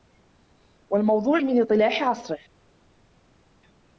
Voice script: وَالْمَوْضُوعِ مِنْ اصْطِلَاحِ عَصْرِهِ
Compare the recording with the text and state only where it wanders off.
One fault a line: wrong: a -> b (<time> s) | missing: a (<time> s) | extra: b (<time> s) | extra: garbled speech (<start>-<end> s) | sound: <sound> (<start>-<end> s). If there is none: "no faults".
no faults